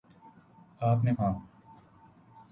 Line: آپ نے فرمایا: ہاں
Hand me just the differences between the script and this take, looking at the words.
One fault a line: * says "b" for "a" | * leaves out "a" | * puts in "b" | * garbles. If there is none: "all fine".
* leaves out "فرمایا"